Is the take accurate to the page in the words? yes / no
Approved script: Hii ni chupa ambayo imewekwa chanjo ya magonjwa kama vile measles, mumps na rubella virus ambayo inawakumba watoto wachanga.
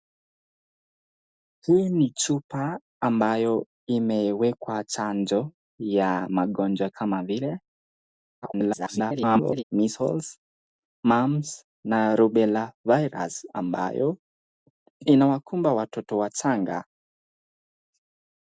no